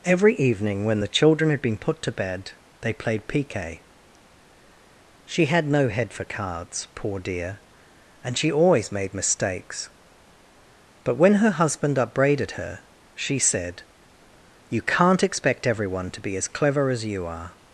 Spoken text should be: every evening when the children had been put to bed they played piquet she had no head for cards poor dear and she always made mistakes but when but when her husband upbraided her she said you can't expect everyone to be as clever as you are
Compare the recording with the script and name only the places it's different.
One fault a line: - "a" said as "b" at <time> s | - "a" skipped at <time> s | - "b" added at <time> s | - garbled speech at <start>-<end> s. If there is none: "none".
- "but when" skipped at 11.3 s